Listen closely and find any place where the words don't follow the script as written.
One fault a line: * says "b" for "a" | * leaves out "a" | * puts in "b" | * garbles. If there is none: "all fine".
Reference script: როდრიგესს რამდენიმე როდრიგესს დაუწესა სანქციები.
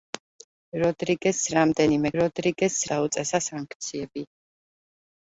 all fine